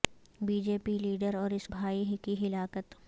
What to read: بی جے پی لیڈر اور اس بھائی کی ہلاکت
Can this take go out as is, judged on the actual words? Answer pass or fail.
pass